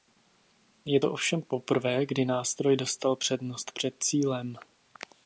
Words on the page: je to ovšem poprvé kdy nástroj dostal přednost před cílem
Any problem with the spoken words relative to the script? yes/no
no